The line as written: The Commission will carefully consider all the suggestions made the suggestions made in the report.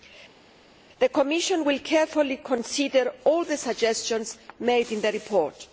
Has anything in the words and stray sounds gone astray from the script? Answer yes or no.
yes